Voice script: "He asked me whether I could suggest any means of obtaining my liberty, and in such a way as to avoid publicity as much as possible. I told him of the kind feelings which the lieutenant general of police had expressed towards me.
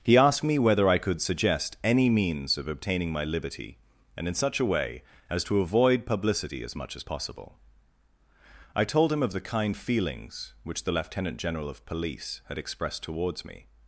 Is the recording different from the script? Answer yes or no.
no